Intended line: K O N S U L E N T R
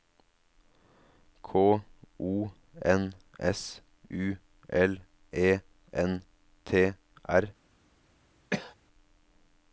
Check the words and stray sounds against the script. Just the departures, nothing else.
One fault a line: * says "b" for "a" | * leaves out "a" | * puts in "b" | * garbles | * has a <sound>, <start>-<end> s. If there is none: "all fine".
* has a cough, 8.5-8.7 s